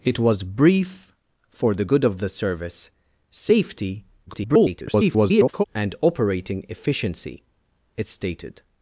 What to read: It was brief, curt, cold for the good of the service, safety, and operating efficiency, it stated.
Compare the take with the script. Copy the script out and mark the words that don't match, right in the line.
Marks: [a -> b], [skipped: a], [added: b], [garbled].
It was brief, [skipped: curt, cold] for the good of the service, safety, [garbled] and operating efficiency, it stated.